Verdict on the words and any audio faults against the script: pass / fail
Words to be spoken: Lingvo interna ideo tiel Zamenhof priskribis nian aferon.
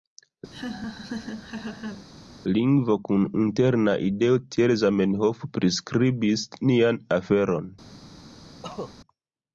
fail